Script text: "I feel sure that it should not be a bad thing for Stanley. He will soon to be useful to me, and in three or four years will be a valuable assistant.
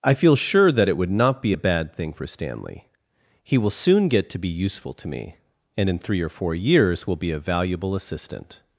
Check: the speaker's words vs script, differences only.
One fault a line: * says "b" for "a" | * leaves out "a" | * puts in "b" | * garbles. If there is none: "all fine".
* says "would" for "should"
* puts in "get"